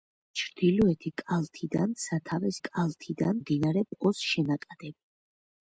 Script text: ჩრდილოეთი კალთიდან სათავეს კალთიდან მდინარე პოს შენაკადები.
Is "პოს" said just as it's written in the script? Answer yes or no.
yes